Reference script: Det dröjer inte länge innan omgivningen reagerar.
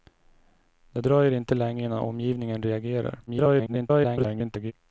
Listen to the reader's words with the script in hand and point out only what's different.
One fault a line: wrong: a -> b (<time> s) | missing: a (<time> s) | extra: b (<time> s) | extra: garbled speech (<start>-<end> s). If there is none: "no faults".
extra: garbled speech (3.3-4.7 s)